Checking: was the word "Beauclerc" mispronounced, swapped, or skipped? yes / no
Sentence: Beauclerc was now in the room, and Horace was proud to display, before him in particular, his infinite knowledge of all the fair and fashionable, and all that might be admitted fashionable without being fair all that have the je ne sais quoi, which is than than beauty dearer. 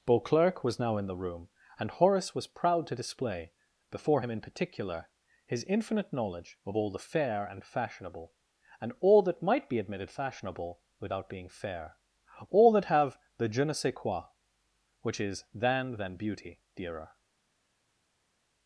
no